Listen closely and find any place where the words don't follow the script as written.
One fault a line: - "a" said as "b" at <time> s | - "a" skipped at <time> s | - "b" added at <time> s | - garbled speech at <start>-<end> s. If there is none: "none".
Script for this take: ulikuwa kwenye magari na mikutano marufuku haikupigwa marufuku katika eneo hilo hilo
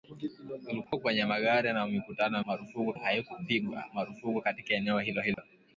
none